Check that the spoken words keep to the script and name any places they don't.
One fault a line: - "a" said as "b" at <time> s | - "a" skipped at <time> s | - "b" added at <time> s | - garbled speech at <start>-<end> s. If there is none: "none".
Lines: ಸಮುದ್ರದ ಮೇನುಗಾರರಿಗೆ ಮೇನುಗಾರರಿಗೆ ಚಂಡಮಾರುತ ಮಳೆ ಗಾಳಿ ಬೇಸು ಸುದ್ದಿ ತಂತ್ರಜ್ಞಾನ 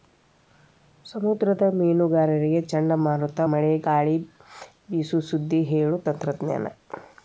- "ಮೇನುಗಾರರಿಗೆ" skipped at 2.6 s
- "ಹೇಳು" added at 5.7 s